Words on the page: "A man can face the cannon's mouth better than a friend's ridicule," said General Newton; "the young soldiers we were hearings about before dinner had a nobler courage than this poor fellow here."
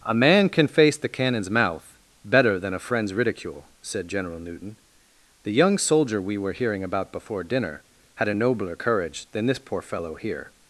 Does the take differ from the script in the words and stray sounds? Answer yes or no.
yes